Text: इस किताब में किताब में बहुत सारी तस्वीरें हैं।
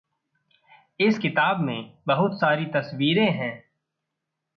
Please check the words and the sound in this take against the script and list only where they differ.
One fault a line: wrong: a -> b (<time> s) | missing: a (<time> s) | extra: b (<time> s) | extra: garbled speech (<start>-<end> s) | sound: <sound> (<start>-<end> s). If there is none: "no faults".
missing: किताब में (2.0 s)